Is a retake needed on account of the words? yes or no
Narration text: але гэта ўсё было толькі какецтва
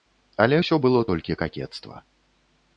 yes